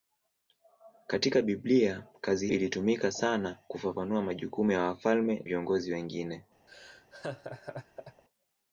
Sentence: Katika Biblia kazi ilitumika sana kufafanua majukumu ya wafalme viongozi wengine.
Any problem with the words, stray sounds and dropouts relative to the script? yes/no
yes